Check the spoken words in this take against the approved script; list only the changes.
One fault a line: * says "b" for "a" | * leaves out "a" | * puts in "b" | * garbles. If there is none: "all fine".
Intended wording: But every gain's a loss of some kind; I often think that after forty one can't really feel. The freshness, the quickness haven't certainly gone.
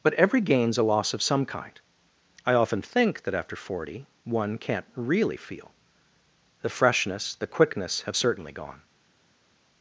* says "have" for "haven't"